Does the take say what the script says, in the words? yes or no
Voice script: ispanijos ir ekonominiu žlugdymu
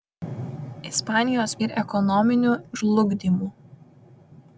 yes